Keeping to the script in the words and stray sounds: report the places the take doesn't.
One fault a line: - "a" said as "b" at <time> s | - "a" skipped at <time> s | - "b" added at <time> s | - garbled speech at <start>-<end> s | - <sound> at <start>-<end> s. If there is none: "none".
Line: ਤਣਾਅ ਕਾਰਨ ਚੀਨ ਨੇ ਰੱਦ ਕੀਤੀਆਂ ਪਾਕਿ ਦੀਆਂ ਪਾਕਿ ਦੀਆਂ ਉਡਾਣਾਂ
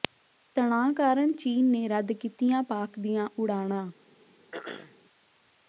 - "ਪਾਕਿ ਦੀਆਂ" skipped at 3.3 s
- throat clearing at 4.5-5.0 s